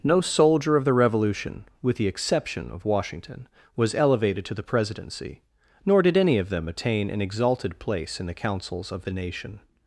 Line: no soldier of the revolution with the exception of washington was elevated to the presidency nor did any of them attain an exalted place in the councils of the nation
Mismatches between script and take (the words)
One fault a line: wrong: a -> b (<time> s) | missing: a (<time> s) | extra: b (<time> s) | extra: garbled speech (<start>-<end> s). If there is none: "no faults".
no faults